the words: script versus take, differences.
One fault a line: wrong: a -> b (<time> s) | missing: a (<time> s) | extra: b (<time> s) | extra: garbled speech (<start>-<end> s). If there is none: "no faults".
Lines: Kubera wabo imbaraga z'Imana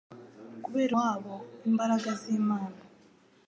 no faults